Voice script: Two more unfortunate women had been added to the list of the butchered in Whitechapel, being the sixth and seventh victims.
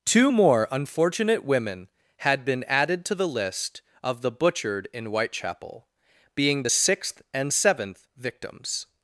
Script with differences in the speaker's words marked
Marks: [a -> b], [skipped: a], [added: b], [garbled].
Two more unfortunate women had been added to the list of the butchered in Whitechapel, being the sixth and seventh victims.